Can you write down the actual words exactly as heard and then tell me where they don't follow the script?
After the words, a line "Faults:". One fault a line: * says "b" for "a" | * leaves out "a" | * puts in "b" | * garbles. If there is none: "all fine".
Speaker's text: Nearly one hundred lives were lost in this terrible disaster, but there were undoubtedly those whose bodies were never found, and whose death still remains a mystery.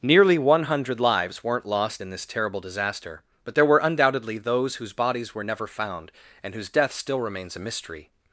Nearly one hundred lives weren't lost in this terrible disaster, but there were undoubtedly those whose bodies were never found, and whose death still remains a mystery.
Faults:
* says "weren't" for "were"